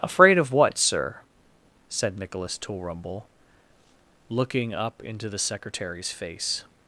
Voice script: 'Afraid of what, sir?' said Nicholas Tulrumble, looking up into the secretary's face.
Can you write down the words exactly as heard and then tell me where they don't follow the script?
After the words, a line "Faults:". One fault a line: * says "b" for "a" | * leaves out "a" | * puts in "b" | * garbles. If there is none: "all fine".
'Afraid of what, sir?' said Nicholas Tulrumble, looking up into the secretary's face.
Faults:
all fine